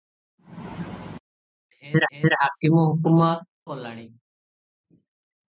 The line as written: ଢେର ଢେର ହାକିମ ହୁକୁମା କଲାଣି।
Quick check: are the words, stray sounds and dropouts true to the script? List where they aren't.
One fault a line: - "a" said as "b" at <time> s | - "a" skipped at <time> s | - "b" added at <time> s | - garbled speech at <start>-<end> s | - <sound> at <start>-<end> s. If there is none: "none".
none